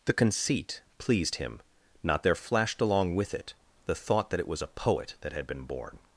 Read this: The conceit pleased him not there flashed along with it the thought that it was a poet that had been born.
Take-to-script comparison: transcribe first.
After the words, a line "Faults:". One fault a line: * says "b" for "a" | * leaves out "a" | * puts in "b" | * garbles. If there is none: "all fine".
The conceit pleased him not there flashed along with it the thought that it was a poet that had been born.
Faults:
all fine